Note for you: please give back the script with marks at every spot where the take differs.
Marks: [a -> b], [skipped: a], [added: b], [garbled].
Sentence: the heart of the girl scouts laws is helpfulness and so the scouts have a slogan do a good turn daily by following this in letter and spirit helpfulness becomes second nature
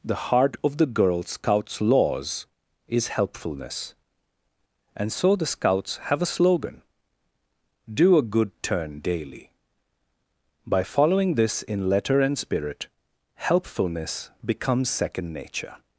the heart of the girl scouts laws is helpfulness and so the scouts have a slogan do a good turn daily by following this in letter and spirit helpfulness becomes second nature